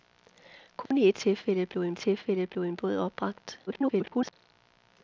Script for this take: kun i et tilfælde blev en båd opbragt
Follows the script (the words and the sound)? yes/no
no